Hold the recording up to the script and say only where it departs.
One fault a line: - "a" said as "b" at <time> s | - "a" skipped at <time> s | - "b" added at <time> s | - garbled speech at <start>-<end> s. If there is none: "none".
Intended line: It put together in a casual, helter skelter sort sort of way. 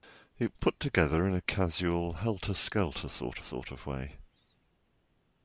none